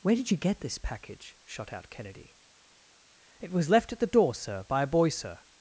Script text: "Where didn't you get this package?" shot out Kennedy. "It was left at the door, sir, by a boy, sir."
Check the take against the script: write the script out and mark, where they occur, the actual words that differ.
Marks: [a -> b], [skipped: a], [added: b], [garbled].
"Where [didn't -> did] you get this package?" shot out Kennedy. "It was left at the door, sir, by a boy, sir."